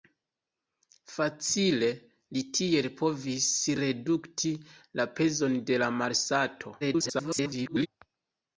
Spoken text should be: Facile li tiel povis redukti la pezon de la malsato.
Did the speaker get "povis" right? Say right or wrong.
right